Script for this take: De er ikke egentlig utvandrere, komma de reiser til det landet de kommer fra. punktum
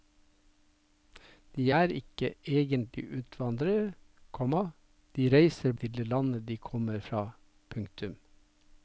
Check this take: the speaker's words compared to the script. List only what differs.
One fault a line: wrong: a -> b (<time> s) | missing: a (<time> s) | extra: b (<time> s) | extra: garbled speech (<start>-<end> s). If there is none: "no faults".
no faults